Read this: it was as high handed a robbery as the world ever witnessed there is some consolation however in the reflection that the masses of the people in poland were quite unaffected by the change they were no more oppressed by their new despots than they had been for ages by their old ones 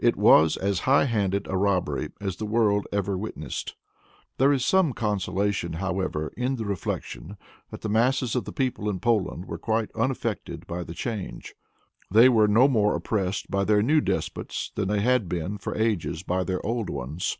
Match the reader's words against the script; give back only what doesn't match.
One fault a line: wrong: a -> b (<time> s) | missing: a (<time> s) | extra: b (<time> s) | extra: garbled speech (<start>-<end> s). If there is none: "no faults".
no faults